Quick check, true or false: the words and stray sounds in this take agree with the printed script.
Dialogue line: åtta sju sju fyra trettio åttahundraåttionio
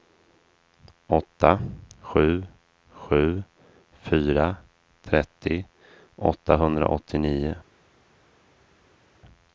true